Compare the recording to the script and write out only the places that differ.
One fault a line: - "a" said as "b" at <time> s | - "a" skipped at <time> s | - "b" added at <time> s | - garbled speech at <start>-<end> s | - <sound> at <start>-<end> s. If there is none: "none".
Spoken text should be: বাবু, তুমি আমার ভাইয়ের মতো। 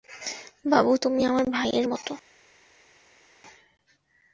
none